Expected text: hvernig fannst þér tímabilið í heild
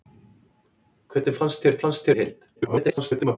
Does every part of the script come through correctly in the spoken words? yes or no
no